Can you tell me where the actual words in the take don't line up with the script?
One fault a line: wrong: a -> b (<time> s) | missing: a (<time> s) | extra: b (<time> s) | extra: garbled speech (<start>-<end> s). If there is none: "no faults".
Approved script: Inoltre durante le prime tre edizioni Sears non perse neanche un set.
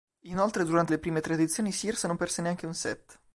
no faults